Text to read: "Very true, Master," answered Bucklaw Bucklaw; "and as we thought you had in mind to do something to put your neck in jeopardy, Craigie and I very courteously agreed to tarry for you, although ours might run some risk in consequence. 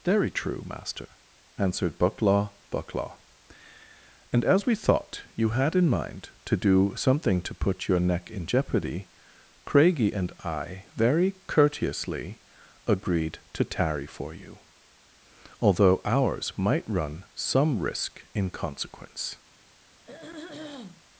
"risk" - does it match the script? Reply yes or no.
yes